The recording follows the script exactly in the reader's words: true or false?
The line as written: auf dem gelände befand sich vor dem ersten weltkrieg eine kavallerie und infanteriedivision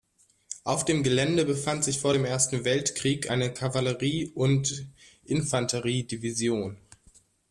true